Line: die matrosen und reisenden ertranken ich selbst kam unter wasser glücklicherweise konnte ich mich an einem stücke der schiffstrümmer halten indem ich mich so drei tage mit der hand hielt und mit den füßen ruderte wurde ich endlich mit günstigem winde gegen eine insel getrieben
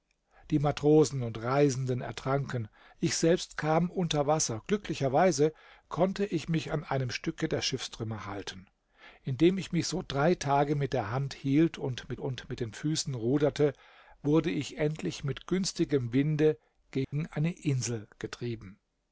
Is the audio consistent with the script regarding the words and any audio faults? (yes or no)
no